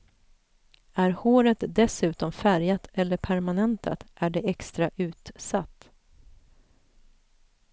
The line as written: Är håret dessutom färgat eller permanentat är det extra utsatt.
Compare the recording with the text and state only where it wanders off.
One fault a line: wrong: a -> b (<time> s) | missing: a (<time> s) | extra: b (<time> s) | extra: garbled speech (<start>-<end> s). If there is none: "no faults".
no faults